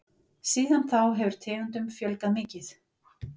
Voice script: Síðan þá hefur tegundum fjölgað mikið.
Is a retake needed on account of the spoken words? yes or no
no